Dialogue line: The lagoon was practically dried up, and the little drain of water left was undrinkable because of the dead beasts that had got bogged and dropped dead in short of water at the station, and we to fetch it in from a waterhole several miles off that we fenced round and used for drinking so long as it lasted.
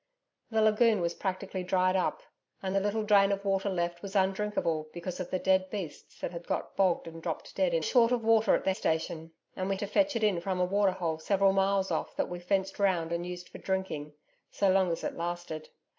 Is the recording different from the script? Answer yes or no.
no